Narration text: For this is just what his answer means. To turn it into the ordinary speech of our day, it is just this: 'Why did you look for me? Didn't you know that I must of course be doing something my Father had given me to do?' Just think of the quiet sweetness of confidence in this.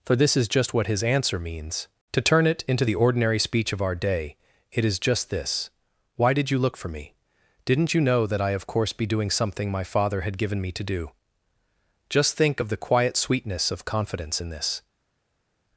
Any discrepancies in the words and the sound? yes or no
yes